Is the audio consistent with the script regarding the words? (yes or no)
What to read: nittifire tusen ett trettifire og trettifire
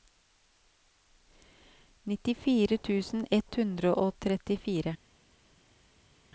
no